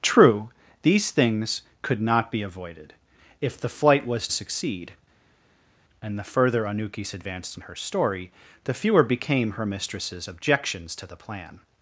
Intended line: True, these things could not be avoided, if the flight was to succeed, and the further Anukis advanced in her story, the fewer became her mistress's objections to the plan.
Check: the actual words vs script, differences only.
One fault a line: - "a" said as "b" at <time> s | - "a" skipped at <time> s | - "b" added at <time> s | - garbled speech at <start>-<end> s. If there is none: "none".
- "to" skipped at 4.3 s